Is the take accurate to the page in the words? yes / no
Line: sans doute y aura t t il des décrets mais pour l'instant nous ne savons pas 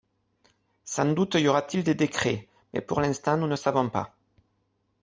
no